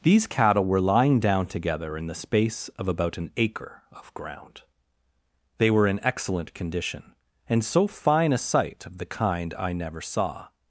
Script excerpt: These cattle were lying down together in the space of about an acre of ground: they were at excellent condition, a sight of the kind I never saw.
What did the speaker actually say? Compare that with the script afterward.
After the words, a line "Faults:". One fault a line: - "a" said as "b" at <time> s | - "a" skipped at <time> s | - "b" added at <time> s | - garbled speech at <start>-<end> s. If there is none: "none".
These cattle were lying down together in the space of about an acre of ground: they were in excellent condition, and so fine a sight of the kind I never saw.
Faults:
- "at" said as "in" at 5.8 s
- "and so fine" added at 7.5 s